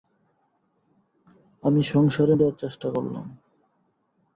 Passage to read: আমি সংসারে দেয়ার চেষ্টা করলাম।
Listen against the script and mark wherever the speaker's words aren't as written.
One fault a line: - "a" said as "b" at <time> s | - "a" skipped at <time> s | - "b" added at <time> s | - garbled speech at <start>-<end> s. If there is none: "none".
none